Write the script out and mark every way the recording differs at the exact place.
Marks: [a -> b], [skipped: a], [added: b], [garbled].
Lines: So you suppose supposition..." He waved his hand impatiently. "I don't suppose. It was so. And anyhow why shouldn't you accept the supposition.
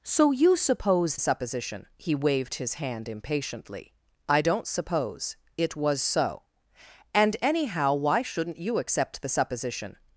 So you suppose supposition..." He waved his hand impatiently. "I don't suppose. It was so. And anyhow why shouldn't you accept the supposition.